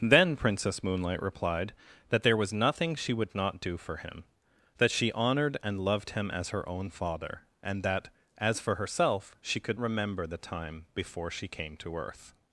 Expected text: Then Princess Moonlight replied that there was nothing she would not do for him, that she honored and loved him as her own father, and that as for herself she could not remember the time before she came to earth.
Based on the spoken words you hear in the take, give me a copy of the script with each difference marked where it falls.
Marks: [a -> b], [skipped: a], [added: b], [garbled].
Then Princess Moonlight replied that there was nothing she would not do for him, that she honored and loved him as her own father, and that as for herself she could [skipped: not] remember the time before she came to earth.